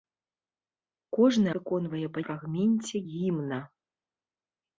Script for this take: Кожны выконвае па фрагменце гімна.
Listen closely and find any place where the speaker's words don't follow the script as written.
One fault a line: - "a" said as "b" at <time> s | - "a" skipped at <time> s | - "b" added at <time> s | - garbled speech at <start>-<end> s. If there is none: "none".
none